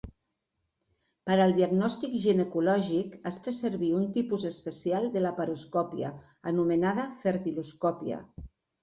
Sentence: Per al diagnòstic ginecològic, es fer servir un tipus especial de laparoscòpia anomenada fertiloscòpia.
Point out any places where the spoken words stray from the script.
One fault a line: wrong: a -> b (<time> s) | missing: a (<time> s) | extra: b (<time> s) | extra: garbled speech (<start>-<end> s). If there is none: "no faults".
no faults